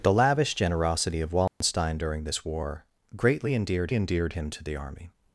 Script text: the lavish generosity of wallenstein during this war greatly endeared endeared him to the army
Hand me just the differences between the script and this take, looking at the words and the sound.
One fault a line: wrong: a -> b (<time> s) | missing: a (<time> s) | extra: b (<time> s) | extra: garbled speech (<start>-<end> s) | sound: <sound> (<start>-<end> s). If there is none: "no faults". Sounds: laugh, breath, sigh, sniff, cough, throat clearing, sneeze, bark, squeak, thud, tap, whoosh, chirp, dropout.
sound: dropout (1.5-1.6 s)